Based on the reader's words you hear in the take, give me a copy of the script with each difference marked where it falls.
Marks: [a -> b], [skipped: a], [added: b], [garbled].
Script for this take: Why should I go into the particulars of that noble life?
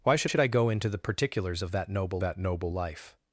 Why should [added: should] I go into the particulars of that noble [added: that noble] life?